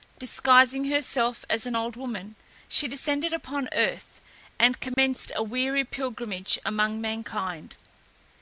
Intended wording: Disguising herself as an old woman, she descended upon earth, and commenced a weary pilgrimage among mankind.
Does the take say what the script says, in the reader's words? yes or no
yes